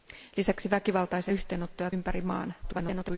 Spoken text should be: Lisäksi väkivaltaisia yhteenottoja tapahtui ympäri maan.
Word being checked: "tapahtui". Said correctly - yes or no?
no